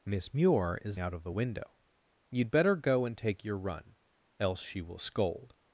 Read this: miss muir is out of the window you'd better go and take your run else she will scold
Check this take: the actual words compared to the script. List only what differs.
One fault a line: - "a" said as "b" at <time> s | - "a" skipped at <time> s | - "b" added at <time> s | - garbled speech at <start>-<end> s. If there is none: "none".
none